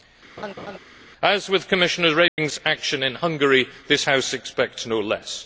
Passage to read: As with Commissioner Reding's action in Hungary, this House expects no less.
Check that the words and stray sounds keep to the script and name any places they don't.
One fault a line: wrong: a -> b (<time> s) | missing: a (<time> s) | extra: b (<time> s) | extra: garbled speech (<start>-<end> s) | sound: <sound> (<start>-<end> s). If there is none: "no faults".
sound: laugh (0.4-0.8 s)
sound: dropout (2.3-2.4 s)